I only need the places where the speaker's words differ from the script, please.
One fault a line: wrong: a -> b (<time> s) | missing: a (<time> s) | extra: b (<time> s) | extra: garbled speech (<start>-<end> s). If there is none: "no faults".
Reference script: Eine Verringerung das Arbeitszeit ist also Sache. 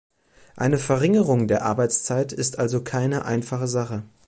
wrong: das -> der (1.5 s)
extra: keine einfache (2.8 s)